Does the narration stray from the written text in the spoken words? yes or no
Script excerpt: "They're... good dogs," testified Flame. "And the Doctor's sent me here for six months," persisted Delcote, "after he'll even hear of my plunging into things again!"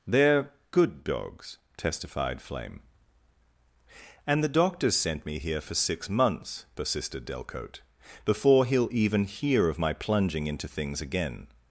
yes